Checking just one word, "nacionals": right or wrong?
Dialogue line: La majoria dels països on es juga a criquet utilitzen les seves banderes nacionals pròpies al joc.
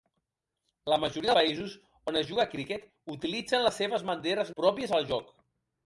wrong